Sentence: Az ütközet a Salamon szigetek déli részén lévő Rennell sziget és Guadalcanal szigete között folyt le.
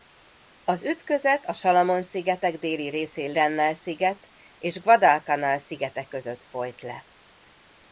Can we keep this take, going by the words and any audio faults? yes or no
no